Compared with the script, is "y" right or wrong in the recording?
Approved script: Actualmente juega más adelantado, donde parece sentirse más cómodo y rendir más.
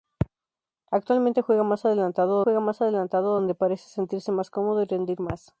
right